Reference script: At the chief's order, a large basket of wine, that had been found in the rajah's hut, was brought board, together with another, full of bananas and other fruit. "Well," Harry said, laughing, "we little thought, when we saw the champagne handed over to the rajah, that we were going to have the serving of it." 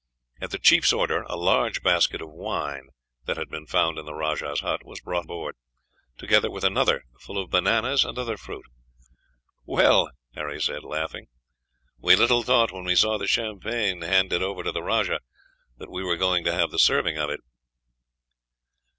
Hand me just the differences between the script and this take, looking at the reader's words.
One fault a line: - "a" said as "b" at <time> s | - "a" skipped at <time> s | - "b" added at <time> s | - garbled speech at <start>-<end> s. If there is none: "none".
none